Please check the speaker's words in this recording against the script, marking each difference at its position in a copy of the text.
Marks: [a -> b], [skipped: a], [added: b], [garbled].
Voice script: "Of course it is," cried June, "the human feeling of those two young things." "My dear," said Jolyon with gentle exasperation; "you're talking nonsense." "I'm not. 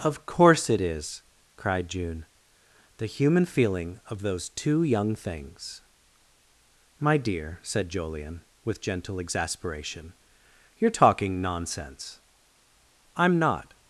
"Of course it is," cried June, "the human feeling of those two young things." "My dear," said Jolyon with gentle exasperation; "you're talking nonsense." "I'm not.